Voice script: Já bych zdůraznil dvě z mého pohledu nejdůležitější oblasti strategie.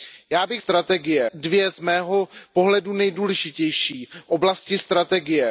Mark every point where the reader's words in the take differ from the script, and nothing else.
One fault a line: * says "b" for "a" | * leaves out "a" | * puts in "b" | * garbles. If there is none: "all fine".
* says "strategie" for "zdůraznil"